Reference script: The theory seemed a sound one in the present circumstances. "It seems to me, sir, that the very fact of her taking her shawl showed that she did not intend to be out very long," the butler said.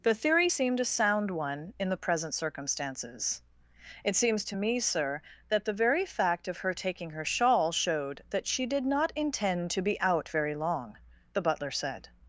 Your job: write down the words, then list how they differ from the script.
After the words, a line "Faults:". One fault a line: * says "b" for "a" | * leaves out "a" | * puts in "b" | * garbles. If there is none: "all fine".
The theory seemed a sound one in the present circumstances. "It seems to me, sir, that the very fact of her taking her shawl showed that she did not intend to be out very long," the butler said.
Faults:
all fine